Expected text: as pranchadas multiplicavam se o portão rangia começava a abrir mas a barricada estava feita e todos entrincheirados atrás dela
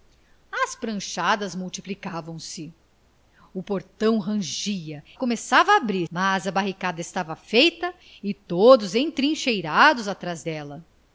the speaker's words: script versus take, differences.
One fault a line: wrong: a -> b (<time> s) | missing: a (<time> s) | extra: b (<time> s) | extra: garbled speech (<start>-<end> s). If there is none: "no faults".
no faults